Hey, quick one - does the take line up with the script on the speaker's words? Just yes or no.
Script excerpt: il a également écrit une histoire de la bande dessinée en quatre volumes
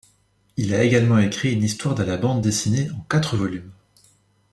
yes